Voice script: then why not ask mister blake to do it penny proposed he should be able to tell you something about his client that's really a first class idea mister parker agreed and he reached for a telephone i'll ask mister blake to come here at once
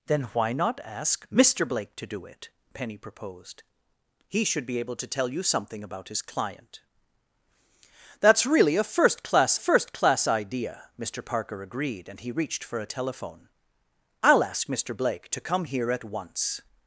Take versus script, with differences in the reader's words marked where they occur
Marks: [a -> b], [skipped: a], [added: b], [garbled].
then why not ask mister blake to do it penny proposed he should be able to tell you something about his client that's really a first class [added: first class] idea mister parker agreed and he reached for a telephone i'll ask mister blake to come here at once